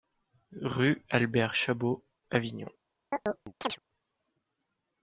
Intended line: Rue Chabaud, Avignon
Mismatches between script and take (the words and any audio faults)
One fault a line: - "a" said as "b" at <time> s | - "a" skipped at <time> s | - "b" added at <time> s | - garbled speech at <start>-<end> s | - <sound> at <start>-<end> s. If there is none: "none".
- "Albert" added at 1.1 s
- chirp at 3.1-3.8 s